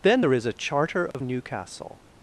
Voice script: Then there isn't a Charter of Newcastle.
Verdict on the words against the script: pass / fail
fail